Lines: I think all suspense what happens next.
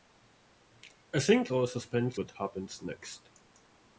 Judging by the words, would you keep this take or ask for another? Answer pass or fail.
pass